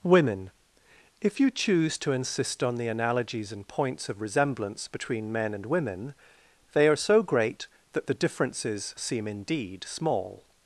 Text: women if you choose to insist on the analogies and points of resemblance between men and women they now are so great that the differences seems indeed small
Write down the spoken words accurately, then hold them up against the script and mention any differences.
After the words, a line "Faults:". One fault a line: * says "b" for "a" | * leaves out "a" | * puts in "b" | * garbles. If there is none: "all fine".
women if you choose to insist on the analogies and points of resemblance between men and women they are so great that the differences seem indeed small
Faults:
* leaves out "now"
* says "seem" for "seems"